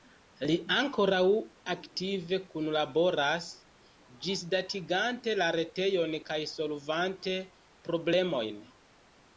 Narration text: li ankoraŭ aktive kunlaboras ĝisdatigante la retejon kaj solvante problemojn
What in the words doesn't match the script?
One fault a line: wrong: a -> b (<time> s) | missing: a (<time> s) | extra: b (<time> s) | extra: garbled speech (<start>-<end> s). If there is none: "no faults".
no faults